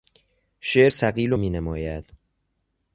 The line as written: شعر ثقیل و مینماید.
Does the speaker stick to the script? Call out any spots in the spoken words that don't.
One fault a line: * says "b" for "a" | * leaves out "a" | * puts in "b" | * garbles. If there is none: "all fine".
all fine